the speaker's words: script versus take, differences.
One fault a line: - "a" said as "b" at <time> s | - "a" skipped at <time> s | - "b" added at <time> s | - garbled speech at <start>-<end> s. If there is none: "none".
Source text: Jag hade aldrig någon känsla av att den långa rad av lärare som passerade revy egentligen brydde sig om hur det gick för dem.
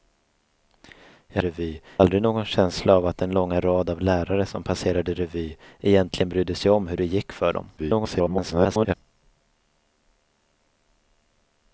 - "hade" said as "revy" at 1.4 s
- garbled speech at 7.8-8.9 s